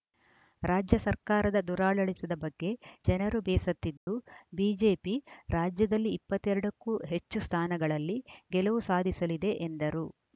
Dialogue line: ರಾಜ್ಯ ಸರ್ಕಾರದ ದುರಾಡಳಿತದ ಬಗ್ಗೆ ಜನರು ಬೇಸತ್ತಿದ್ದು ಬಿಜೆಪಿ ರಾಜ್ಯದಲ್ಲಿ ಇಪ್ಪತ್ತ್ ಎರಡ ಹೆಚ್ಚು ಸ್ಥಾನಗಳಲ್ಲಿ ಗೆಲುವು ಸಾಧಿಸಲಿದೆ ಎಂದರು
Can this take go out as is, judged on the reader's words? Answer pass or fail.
fail